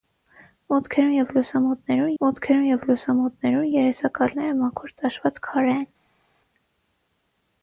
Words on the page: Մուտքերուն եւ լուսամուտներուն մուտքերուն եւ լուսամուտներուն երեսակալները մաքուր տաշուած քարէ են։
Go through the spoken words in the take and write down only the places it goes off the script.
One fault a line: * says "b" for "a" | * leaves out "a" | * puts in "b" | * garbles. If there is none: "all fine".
all fine